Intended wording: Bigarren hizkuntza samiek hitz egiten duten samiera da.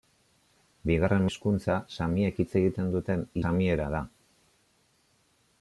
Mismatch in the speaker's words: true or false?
false